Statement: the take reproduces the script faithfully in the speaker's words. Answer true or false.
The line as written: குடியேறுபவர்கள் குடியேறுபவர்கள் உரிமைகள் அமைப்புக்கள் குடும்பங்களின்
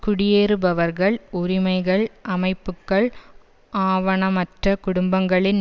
false